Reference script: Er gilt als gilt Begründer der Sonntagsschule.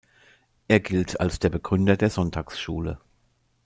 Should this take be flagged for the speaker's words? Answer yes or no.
yes